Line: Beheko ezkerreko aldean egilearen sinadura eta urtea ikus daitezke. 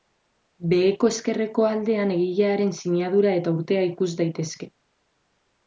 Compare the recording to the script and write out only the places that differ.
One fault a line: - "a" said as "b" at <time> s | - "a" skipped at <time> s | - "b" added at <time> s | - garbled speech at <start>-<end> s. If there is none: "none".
none